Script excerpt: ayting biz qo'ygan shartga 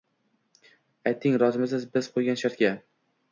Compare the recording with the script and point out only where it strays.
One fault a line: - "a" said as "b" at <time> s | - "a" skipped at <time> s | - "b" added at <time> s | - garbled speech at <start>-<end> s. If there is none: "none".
- "rozimisiz" added at 1.4 s